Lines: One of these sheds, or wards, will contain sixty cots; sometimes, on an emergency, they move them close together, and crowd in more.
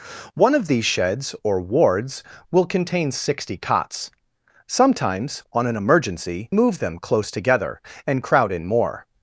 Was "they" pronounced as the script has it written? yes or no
no